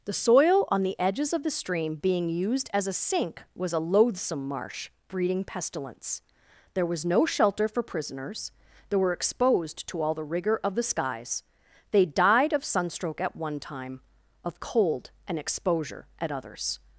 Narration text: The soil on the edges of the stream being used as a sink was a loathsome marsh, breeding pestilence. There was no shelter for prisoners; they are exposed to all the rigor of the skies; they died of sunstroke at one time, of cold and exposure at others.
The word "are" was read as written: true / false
false